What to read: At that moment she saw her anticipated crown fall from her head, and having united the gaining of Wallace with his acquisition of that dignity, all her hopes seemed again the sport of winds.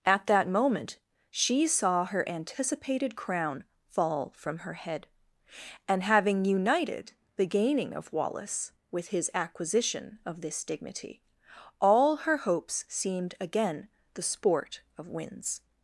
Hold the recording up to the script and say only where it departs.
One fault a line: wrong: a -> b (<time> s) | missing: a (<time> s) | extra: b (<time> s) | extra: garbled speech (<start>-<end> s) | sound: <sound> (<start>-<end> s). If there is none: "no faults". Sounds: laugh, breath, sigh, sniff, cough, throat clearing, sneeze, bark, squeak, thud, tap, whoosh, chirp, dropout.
wrong: that -> this (10.4 s)